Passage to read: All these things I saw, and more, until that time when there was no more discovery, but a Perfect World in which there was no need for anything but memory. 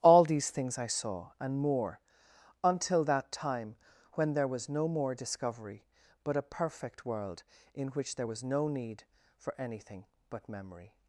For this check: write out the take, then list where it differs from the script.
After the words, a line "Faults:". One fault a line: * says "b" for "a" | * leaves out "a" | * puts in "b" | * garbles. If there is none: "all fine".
All these things I saw, and more, until that time when there was no more discovery, but a Perfect World in which there was no need for anything but memory.
Faults:
all fine